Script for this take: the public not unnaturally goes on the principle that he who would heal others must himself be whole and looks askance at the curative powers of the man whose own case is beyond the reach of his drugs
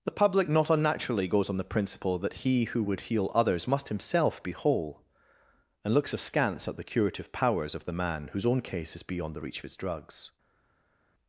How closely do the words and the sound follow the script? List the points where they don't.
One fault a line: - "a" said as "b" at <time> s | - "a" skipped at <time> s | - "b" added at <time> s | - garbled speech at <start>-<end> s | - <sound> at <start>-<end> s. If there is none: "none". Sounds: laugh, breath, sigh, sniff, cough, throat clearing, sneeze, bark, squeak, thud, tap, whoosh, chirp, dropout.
none